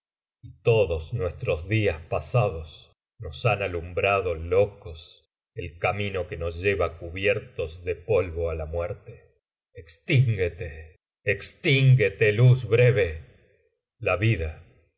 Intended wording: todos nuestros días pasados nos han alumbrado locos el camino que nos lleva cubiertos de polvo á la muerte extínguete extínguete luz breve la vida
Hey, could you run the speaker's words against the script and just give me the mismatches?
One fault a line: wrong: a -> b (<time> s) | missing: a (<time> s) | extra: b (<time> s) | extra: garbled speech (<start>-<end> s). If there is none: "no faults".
no faults